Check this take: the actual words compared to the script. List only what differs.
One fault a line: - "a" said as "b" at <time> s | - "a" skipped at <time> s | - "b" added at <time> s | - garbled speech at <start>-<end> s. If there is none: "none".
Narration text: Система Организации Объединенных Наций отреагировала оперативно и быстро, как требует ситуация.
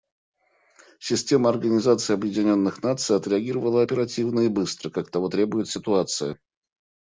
- "того" added at 5.1 s